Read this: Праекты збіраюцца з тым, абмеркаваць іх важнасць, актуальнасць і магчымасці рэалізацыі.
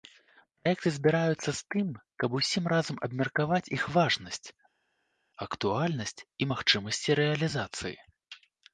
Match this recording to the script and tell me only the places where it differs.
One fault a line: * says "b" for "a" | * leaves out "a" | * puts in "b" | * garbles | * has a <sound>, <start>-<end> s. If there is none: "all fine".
* puts in "каб усім разам"